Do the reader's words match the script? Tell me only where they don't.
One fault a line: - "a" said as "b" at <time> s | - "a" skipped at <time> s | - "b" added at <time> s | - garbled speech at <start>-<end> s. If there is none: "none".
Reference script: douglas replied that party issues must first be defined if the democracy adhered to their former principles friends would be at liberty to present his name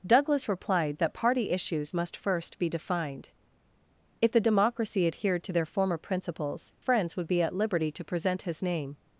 none